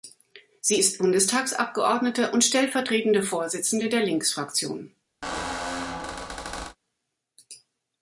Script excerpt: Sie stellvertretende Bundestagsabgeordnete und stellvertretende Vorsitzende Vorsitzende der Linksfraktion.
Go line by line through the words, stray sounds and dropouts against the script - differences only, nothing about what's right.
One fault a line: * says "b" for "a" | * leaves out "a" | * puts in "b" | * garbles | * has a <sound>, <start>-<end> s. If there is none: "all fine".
* says "ist" for "stellvertretende"
* leaves out "Vorsitzende"
* has a squeak, 5.2-6.8 s